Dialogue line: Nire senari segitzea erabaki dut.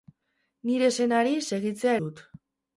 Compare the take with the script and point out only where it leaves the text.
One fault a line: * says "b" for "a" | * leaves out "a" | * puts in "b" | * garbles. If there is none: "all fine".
* leaves out "erabaki"